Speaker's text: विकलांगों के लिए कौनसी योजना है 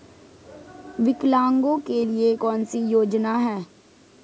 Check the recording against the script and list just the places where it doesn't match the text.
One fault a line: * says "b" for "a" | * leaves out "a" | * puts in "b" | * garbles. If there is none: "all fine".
all fine